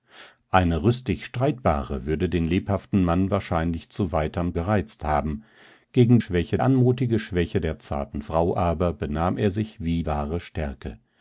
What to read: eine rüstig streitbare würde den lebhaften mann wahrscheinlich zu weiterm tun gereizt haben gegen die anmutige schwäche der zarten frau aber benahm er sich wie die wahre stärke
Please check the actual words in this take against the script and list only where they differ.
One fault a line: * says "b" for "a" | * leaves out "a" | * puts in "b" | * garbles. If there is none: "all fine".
* leaves out "tun"
* says "schwäche" for "die"
* leaves out "die"